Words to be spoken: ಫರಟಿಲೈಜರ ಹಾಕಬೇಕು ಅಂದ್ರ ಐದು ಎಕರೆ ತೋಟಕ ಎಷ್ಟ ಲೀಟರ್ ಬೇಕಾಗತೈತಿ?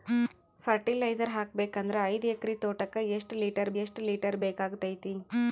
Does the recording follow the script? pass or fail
fail